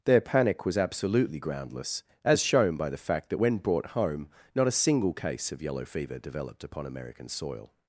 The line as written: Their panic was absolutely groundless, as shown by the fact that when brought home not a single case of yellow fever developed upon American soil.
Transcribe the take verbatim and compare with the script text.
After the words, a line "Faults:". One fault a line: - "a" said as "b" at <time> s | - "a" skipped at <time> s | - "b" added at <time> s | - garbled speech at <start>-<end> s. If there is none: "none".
Their panic was absolutely groundless, as shown by the fact that when brought home not a single case of yellow fever developed upon American soil.
Faults:
none